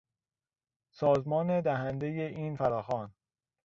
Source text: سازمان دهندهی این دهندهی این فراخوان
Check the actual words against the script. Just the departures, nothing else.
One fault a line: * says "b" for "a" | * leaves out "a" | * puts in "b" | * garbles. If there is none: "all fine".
* leaves out "دهندهی این"